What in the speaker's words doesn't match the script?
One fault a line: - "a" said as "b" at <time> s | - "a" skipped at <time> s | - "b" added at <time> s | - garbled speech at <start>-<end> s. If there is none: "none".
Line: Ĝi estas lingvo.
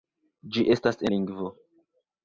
none